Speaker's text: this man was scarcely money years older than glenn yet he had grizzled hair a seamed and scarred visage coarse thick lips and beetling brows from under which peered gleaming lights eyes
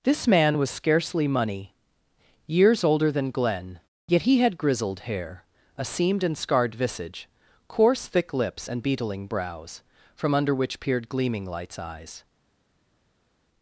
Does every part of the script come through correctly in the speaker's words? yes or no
yes